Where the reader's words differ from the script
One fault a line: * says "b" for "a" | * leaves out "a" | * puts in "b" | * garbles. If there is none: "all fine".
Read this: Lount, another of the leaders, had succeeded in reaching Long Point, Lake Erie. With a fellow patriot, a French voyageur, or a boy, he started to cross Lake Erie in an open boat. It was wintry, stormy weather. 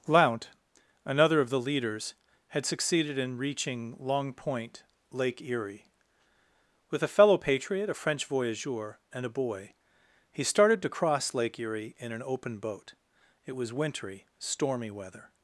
* says "and" for "or"